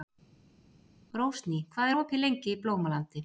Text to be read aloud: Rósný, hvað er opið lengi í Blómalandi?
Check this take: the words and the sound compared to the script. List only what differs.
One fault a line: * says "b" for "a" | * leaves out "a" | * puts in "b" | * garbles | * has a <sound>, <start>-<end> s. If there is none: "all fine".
all fine